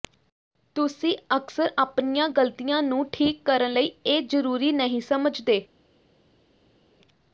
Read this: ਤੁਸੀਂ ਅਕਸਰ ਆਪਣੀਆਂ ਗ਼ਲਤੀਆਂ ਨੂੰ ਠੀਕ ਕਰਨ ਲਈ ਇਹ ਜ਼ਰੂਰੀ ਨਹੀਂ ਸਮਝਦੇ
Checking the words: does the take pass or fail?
pass